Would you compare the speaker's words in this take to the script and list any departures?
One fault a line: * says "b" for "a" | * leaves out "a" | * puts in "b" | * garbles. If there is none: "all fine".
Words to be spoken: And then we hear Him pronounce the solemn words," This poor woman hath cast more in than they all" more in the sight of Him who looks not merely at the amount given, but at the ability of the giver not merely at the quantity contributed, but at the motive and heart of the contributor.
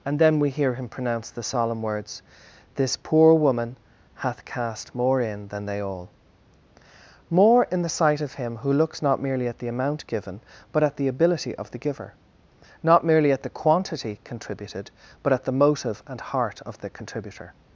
all fine